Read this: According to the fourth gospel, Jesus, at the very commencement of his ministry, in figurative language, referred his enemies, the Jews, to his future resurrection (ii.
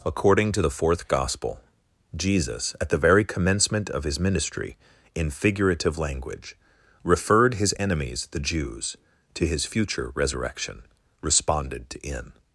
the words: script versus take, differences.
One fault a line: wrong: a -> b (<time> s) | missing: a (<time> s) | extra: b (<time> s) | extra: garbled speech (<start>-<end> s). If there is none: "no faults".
wrong: ii -> responded to in (11.2 s)